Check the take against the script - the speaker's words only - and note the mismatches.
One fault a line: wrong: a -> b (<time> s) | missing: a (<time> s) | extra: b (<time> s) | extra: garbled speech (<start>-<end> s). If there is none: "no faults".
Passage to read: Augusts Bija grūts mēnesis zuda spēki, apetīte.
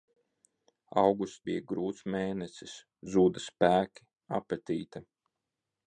no faults